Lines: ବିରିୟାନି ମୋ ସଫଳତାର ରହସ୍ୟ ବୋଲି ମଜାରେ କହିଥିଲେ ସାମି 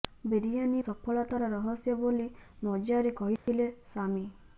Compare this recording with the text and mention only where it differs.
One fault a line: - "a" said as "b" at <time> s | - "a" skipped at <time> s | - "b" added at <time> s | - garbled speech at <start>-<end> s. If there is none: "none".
- "ମୋ" skipped at 0.8 s